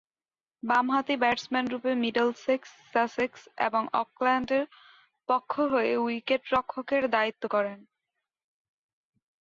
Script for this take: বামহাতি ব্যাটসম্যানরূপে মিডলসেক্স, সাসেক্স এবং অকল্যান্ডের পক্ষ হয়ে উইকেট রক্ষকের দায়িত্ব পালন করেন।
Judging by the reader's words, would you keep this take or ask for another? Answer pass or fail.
fail